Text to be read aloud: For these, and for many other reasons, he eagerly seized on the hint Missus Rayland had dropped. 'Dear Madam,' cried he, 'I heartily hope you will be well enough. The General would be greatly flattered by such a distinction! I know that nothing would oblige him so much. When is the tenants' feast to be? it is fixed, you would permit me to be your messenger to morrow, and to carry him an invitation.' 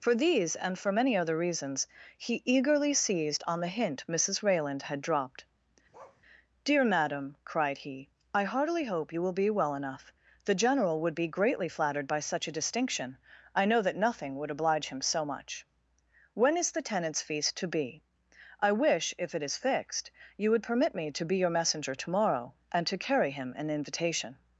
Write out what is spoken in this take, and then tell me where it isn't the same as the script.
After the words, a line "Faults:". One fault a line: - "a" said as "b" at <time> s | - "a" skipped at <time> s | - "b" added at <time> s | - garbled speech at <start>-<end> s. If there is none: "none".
For these, and for many other reasons, he eagerly seized on the hint Missus Rayland had dropped. 'Dear Madam,' cried he, 'I heartily hope you will be well enough. The General would be greatly flattered by such a distinction! I know that nothing would oblige him so much. When is the tenants' feast to be? I wish, if it is fixed, you would permit me to be your messenger to morrow, and to carry him an invitation.'
Faults:
- "I wish if" added at 18.6 s